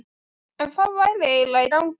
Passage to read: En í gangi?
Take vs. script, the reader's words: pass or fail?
fail